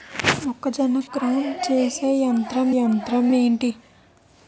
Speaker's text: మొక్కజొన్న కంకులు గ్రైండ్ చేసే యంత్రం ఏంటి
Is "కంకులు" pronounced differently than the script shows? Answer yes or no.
yes